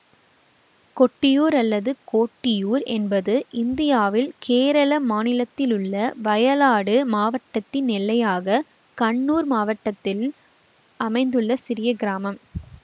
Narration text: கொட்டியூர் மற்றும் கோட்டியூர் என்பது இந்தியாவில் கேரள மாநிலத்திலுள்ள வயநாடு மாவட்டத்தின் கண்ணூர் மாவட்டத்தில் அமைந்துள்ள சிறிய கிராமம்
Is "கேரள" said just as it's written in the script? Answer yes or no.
yes